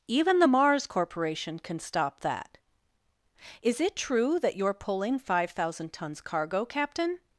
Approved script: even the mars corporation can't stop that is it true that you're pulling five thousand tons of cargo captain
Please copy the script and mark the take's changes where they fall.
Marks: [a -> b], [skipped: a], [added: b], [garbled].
even the mars corporation [can't -> can] stop that is it true that you're pulling five thousand tons [skipped: of] cargo captain